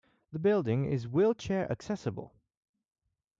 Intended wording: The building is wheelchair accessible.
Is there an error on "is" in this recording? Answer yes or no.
no